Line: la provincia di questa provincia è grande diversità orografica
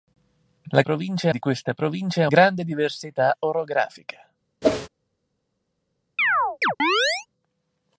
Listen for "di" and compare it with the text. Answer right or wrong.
right